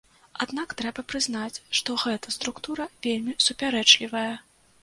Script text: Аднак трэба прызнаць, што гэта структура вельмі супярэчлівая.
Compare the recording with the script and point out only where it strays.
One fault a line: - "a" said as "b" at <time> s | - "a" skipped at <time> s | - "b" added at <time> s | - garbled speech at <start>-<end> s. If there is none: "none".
none